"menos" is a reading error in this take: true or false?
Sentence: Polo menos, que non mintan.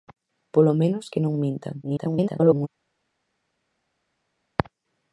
false